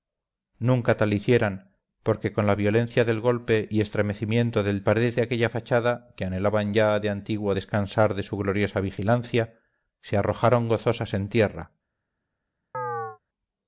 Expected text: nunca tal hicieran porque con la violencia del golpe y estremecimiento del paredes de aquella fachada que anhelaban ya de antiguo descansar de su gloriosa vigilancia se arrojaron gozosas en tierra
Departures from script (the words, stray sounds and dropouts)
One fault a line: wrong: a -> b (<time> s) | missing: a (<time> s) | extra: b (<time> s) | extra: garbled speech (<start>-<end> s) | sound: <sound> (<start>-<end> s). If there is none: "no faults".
sound: chirp (12.7-13.2 s)